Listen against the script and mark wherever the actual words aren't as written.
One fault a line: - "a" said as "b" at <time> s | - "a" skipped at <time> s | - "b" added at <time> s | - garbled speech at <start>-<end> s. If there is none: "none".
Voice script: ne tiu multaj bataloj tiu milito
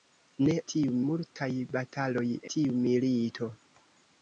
none